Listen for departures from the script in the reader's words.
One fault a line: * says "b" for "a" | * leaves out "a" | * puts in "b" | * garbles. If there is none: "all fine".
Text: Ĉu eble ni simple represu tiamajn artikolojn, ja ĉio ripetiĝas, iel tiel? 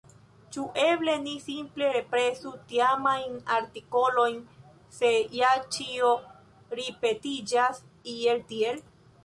* puts in "se"